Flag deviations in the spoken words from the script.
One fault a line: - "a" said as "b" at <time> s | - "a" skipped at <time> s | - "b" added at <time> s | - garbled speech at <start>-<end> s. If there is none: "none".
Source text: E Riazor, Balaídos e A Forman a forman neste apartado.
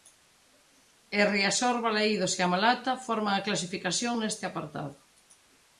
- "Malata" added at 2.5 s
- "forman" said as "clasificación" at 3.5 s